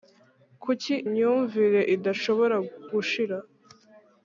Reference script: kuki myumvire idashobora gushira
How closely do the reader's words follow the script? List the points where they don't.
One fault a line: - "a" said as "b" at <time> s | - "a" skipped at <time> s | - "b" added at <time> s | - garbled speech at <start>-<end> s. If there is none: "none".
none